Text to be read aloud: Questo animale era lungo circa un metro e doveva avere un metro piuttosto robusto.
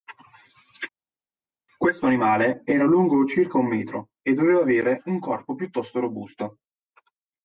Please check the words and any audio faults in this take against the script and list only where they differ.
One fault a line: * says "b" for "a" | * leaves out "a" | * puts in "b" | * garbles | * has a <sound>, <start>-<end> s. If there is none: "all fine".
* says "corpo" for "metro"